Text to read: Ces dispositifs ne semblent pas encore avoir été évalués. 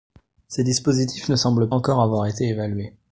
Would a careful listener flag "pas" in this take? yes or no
yes